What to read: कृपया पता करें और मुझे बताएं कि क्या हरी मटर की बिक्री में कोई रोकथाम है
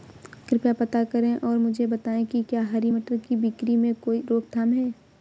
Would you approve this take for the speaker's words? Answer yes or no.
yes